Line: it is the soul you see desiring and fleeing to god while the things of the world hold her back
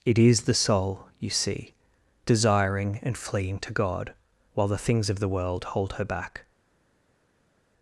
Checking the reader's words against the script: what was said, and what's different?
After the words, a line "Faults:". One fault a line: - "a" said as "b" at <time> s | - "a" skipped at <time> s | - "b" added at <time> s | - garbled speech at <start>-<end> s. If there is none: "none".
it is the soul you see desiring and fleeing to god while the things of the world hold her back
Faults:
none